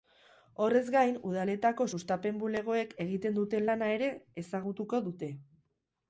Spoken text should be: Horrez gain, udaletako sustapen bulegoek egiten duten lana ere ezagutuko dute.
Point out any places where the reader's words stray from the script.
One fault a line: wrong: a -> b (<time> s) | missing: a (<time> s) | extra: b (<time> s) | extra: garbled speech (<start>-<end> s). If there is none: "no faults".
no faults